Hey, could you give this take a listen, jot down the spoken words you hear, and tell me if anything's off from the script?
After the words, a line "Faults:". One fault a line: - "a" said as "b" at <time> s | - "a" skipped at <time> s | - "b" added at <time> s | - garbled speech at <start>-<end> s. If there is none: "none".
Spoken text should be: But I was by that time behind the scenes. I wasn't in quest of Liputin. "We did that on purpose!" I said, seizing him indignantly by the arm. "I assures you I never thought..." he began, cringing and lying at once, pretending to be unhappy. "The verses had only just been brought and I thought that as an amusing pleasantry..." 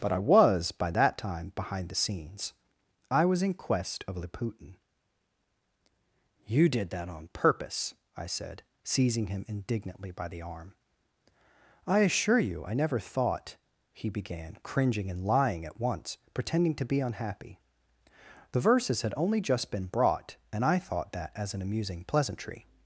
But I was by that time behind the scenes. I was in quest of Liputin. "You did that on purpose!" I said, seizing him indignantly by the arm. "I assure you I never thought..." he began, cringing and lying at once, pretending to be unhappy. "The verses had only just been brought and I thought that as an amusing pleasantry..."
Faults:
- "wasn't" said as "was" at 3.2 s
- "We" said as "You" at 6.5 s
- "assures" said as "assure" at 12.0 s